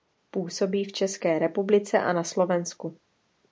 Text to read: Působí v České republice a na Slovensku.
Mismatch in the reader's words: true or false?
false